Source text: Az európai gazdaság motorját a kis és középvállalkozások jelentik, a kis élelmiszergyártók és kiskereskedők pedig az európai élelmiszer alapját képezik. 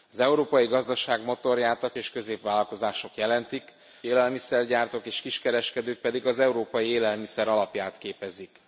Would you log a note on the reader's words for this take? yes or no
yes